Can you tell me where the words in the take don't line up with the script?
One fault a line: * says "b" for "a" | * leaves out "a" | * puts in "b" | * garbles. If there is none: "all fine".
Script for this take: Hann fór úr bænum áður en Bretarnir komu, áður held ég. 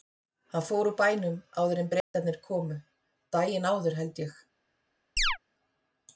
* puts in "daginn"